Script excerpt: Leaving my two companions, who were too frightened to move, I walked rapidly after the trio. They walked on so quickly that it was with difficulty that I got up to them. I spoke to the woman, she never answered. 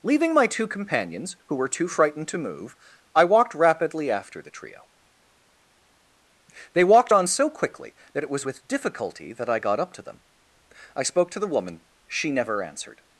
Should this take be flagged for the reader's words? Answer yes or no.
no